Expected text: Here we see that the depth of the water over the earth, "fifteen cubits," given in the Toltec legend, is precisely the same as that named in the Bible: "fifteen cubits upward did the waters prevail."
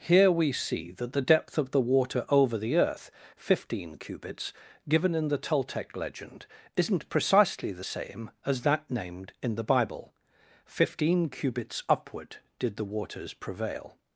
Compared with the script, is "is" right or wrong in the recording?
wrong